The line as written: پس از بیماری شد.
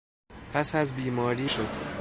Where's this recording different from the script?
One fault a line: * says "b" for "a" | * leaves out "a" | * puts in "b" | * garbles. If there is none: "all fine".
all fine